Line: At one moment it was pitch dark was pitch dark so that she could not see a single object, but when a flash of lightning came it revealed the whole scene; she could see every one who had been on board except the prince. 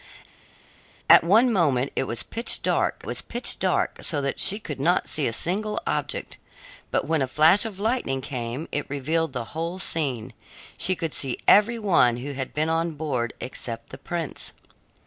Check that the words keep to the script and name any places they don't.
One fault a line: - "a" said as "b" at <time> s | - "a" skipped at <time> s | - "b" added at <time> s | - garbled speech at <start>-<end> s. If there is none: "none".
none